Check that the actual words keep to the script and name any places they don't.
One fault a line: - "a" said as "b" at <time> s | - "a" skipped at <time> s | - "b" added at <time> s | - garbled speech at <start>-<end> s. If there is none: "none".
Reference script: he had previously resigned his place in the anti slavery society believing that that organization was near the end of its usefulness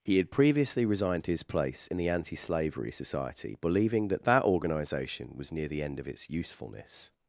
none